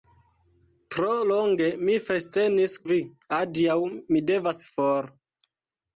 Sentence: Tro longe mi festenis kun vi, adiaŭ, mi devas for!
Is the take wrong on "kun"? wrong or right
wrong